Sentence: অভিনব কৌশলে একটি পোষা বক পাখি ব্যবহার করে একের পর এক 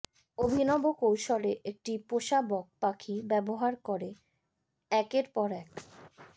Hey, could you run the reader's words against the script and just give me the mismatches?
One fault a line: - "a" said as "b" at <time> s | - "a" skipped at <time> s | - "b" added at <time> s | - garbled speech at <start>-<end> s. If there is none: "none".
none